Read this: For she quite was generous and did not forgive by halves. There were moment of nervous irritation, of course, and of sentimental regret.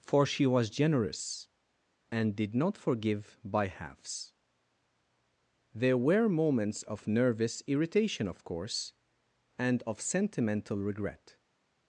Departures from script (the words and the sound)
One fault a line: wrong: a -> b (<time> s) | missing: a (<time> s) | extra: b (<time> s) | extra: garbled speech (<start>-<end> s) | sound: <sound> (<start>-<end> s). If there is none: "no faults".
missing: quite (0.5 s)
wrong: moment -> moments (6.3 s)